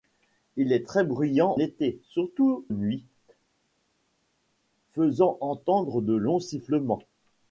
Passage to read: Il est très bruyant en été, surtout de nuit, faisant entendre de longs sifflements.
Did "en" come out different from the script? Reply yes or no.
yes